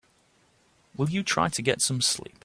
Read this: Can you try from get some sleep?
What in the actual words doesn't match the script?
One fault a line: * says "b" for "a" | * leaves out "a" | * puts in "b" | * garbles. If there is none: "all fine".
* says "Will" for "Can"
* says "to" for "from"